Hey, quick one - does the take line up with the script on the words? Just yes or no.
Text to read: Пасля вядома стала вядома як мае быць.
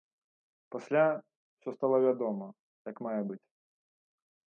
no